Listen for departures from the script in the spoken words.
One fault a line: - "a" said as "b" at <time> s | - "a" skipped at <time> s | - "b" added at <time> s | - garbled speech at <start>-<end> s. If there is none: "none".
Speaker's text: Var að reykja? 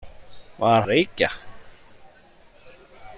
none